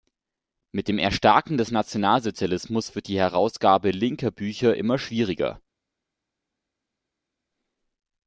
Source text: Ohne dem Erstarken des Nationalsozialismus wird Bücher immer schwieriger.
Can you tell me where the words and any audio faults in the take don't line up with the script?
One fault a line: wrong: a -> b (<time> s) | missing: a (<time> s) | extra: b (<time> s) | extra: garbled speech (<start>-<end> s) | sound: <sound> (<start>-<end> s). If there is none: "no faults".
wrong: Ohne -> Mit (0.7 s)
extra: die Herausgabe linker (3.1 s)